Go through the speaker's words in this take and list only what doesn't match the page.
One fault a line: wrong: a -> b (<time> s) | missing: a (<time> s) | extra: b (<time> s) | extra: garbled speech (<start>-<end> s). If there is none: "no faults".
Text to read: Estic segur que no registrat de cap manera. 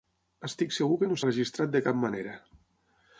no faults